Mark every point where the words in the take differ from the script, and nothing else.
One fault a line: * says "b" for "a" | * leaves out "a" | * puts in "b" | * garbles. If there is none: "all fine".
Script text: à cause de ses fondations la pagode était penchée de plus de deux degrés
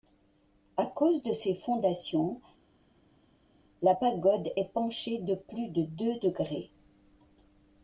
* says "est" for "était"